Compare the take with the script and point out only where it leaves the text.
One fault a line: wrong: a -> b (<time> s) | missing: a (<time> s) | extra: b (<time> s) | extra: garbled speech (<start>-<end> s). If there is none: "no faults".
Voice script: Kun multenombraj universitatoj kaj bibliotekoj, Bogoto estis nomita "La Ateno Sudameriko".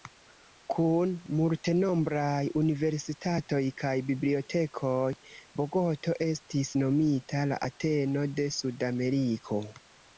extra: de (8.4 s)